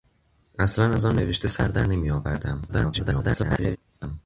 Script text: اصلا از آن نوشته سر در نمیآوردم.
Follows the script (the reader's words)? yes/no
no